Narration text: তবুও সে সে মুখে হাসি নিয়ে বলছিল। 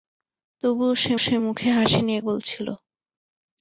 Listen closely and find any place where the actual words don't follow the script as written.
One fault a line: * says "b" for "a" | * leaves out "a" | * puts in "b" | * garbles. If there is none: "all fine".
all fine